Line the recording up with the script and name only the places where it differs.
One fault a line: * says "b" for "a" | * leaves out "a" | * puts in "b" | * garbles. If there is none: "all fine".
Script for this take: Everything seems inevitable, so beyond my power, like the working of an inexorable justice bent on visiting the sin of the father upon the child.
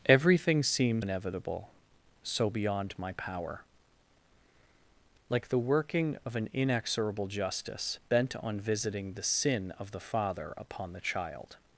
all fine